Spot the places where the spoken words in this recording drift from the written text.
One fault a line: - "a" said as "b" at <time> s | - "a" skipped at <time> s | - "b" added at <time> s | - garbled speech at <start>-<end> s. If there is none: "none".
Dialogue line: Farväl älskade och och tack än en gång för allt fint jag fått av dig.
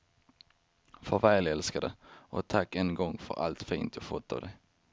- "och" skipped at 2.5 s